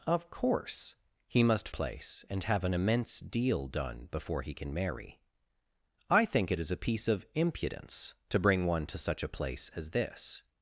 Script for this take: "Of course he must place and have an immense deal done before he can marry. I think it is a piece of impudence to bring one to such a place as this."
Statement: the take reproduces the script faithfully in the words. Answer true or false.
true